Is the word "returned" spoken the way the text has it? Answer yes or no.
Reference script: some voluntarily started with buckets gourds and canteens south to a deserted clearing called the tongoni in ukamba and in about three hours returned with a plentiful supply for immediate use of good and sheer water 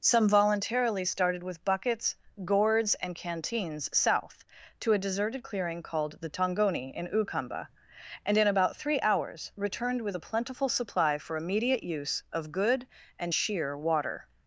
yes